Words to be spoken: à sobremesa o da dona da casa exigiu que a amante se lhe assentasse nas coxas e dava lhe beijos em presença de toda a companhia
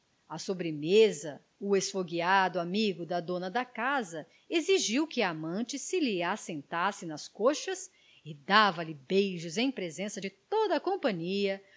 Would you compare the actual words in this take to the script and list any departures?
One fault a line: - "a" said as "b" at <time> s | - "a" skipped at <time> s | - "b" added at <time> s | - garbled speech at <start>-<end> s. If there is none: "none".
- "esfogueado amigo" added at 1.8 s